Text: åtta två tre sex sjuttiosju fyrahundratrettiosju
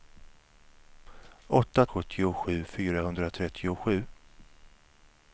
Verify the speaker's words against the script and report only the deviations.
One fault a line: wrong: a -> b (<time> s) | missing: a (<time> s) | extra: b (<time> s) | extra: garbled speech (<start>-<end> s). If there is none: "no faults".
missing: två tre sex (1.9 s)